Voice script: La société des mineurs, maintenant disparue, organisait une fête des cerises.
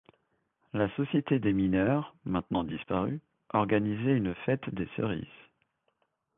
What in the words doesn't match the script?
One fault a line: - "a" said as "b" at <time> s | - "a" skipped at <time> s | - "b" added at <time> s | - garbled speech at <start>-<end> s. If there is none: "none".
none